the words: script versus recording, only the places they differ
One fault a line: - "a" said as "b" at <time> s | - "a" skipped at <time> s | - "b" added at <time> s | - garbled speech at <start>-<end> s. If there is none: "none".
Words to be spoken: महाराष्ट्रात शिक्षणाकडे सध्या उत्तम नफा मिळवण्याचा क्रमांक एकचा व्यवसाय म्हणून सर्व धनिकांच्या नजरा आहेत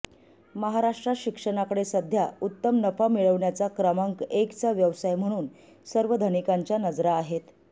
none